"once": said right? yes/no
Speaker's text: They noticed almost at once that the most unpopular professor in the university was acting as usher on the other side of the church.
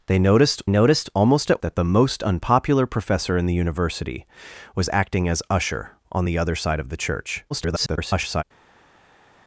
no